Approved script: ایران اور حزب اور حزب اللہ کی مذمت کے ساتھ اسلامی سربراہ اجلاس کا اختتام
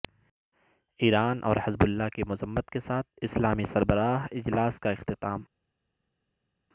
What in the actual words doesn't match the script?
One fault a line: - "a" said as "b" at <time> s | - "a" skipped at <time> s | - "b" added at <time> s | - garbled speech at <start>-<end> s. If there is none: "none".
- "اور حزب" skipped at 1.8 s